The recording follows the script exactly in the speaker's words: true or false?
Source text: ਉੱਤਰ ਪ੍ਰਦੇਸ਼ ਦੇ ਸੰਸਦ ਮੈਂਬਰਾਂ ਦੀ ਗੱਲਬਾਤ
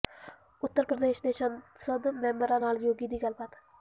false